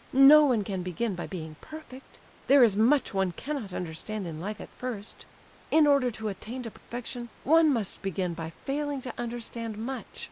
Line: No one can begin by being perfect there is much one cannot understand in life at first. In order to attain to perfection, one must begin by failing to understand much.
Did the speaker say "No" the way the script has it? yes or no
yes